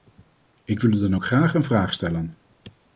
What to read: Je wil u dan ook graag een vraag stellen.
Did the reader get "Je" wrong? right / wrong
wrong